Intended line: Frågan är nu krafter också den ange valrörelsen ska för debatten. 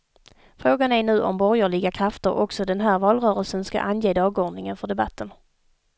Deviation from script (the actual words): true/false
true